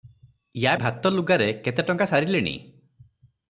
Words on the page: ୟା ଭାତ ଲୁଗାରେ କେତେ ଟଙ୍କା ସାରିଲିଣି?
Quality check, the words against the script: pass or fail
pass